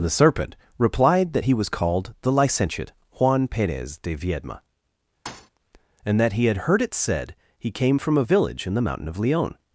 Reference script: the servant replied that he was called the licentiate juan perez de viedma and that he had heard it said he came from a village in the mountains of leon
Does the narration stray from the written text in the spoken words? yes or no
yes